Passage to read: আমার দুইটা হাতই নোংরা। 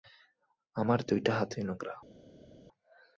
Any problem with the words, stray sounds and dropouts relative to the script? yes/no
no